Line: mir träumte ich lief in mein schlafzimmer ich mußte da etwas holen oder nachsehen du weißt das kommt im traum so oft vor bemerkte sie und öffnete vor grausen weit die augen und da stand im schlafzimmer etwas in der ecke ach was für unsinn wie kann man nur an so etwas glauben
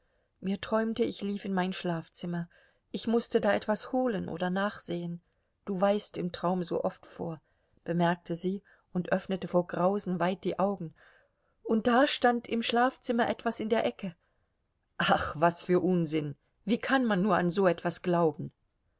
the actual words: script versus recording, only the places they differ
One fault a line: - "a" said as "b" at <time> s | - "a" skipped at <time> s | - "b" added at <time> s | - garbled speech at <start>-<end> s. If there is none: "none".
- "das kommt" skipped at 6.2 s